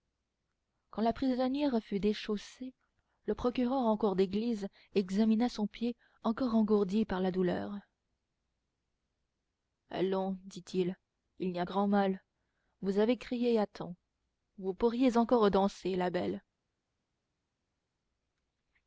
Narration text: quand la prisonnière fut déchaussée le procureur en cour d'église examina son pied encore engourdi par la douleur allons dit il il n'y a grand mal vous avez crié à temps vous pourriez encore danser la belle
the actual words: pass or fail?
pass